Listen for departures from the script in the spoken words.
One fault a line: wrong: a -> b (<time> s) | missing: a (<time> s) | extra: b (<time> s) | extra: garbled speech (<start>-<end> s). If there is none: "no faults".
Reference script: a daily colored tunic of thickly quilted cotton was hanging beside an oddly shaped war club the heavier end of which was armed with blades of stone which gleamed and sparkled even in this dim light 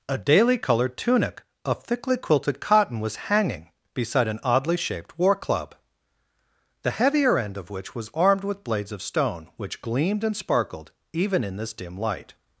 no faults